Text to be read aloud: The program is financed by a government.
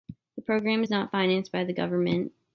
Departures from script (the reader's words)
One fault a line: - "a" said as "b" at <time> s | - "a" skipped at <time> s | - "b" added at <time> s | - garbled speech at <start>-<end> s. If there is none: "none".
- "not" added at 0.9 s
- "a" said as "the" at 1.6 s